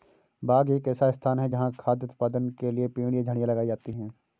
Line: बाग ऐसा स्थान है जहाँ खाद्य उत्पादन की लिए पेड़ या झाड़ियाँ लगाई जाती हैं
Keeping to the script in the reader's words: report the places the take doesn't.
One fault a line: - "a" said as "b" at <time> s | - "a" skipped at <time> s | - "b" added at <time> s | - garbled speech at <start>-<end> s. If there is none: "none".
- "एक" added at 0.7 s
- "की" said as "के" at 2.6 s